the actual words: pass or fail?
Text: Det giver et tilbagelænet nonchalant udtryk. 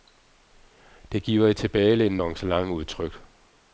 pass